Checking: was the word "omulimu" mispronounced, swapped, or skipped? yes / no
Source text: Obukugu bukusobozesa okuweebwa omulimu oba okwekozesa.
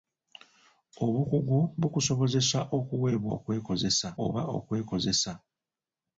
yes